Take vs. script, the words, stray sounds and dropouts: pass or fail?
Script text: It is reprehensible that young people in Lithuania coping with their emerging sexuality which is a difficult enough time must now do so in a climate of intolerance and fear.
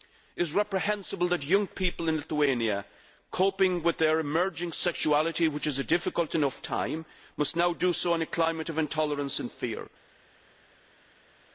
pass